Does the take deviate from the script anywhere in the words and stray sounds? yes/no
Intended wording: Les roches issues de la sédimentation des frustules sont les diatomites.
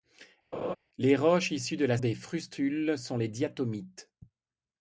yes